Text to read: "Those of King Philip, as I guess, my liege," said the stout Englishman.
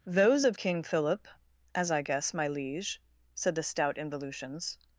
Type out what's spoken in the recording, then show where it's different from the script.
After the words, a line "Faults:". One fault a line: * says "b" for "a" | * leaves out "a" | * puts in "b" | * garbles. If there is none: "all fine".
"Those of King Philip, as I guess, my liege," said the stout Involutions.
Faults:
* says "Involutions" for "Englishman"